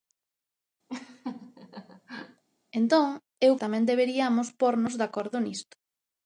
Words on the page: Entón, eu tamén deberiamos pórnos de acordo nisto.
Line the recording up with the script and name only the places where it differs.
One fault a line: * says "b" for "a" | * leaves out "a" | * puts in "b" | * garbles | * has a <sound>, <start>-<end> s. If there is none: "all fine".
* has a laugh, 0.9-2.4 s